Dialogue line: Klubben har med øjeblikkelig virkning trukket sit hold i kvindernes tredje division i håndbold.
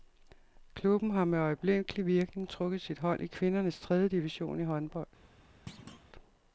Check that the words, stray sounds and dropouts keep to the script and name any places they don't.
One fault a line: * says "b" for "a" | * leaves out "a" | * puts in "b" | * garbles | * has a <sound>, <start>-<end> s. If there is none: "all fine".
* has a thud, 5.7-6.1 s